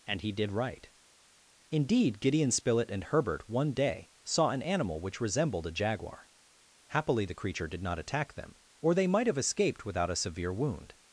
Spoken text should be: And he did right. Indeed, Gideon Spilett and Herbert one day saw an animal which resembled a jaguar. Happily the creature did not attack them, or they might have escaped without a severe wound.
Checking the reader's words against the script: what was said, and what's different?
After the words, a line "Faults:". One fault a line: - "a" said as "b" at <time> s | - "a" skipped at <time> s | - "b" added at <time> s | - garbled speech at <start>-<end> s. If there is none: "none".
And he did right. Indeed, Gideon Spilett and Herbert one day saw an animal which resembled a jaguar. Happily the creature did not attack them, or they might have escaped without a severe wound.
Faults:
none